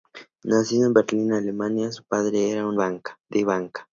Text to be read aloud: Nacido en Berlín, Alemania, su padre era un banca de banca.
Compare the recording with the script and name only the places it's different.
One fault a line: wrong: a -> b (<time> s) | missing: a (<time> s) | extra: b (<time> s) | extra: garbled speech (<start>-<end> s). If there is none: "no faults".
no faults